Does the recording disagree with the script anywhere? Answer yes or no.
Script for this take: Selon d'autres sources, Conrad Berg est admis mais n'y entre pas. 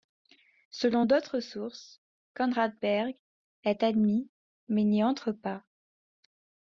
no